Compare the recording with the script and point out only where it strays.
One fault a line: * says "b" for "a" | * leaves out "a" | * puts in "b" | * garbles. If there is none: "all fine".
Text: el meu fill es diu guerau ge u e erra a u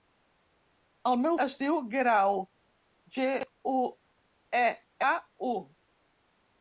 * leaves out "fill"
* leaves out "erra"